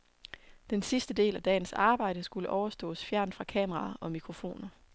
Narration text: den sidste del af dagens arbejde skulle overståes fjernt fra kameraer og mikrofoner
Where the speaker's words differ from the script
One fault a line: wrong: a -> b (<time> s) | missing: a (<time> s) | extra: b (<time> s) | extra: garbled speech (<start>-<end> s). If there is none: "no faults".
no faults